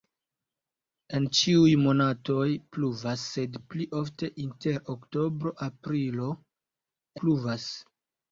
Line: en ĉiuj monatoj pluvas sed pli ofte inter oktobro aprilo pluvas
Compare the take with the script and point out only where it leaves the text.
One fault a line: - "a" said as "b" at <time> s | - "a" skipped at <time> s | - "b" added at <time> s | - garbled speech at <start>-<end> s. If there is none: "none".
none